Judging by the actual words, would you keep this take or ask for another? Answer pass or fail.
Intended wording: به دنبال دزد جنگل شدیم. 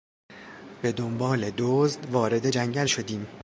fail